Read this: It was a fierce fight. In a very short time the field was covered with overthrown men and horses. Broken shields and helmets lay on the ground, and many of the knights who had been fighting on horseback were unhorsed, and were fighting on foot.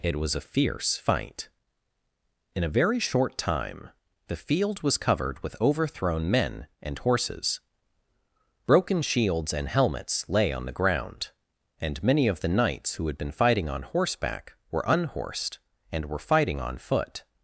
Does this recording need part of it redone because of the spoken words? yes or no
no